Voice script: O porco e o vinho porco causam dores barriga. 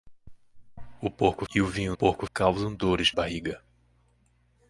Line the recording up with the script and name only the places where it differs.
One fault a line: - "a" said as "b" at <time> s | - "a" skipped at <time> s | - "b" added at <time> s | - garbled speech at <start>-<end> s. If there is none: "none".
none